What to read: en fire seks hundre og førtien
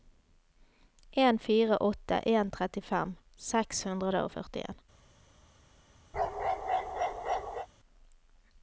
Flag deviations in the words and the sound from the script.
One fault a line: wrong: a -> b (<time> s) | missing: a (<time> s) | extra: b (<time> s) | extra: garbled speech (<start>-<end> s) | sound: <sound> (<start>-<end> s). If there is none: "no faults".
extra: åtte en trettifem (1.8 s)
sound: bark (6.1-7.7 s)